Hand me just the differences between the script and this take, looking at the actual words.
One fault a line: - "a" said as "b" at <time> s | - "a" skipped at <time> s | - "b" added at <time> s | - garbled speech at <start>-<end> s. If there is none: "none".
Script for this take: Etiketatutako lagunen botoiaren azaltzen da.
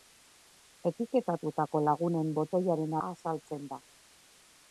none